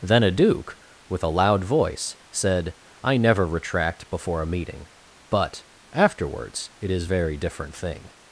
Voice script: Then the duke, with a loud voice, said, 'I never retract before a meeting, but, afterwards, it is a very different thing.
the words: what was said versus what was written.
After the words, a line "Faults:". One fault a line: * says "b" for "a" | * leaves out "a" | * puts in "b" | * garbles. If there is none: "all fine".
Then a duke, with a loud voice, said, 'I never retract before a meeting, but, afterwards, it is very different thing.
Faults:
* says "a" for "the"
* leaves out "a"